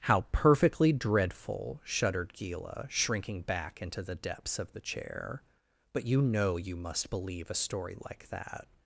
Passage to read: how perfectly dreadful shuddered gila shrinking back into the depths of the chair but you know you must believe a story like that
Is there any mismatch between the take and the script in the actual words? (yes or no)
no